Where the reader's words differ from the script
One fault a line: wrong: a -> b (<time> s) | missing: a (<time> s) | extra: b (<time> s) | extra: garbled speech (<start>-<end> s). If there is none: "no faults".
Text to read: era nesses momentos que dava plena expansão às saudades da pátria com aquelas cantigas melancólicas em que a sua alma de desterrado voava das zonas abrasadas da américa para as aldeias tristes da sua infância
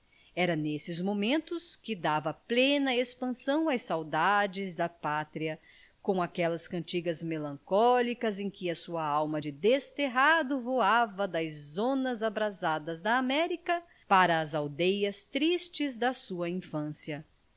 no faults